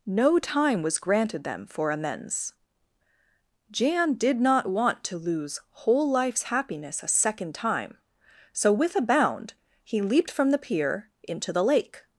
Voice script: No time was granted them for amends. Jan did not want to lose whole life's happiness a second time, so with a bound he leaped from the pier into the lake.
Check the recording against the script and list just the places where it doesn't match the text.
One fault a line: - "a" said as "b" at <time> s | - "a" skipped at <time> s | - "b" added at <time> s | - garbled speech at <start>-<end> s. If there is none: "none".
none